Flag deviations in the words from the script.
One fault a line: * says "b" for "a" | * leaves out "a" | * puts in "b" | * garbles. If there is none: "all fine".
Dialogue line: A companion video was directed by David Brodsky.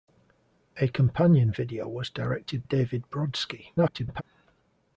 * leaves out "by"
* garbles